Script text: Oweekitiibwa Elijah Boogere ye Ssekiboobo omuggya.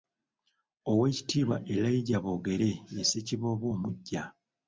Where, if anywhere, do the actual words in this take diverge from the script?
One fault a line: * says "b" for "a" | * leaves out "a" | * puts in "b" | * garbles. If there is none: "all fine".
all fine